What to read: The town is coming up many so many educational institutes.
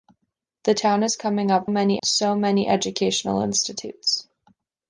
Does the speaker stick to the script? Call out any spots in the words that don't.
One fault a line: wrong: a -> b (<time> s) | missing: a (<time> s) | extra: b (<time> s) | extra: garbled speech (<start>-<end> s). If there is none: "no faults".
no faults